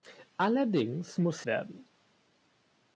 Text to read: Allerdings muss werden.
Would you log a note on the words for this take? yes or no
no